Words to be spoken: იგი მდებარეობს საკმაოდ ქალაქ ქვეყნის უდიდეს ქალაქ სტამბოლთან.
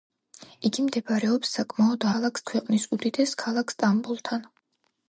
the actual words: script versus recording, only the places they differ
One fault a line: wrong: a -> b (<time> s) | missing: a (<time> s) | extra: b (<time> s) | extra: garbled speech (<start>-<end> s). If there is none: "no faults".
no faults